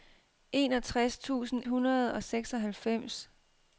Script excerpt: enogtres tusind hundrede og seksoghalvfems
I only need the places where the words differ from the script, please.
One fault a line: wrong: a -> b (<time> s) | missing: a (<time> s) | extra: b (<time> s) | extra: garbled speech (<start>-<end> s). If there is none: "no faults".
no faults